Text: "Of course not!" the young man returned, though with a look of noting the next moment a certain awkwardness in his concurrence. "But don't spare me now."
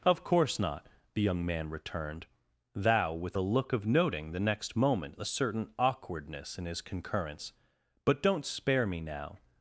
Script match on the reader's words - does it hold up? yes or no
no